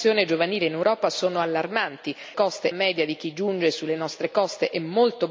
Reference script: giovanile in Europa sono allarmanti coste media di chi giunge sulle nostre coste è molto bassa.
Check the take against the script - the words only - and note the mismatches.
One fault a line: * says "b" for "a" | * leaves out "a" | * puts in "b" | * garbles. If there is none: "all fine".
all fine